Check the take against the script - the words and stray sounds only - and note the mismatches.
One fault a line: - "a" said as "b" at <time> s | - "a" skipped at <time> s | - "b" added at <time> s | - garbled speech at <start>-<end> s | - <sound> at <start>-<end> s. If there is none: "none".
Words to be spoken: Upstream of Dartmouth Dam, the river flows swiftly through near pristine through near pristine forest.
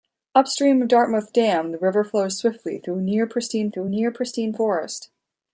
none